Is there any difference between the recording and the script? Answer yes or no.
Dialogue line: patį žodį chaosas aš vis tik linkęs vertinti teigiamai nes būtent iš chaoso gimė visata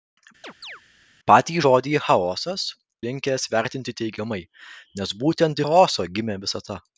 yes